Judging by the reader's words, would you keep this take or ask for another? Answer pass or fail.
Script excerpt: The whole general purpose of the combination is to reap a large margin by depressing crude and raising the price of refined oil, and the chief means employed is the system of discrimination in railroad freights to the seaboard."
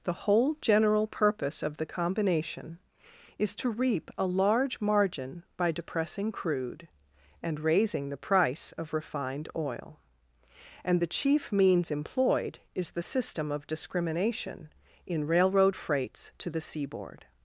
pass